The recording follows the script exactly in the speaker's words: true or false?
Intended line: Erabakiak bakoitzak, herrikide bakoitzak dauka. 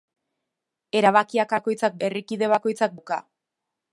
true